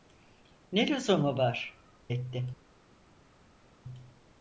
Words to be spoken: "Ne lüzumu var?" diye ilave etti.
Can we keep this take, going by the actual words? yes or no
no